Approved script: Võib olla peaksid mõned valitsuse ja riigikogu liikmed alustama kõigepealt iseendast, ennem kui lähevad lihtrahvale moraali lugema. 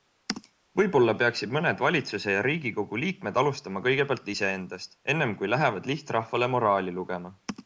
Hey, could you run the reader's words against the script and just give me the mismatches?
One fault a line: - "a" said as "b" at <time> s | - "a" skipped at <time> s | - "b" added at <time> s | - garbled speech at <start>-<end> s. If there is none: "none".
none